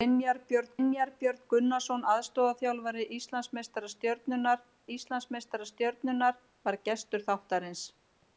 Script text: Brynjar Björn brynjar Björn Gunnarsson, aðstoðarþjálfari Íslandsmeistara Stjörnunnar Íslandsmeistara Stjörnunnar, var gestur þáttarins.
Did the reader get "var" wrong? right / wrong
right